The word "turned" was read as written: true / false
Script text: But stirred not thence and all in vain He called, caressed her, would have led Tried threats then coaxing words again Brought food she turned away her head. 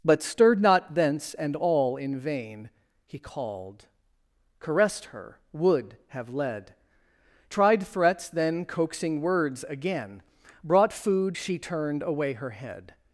true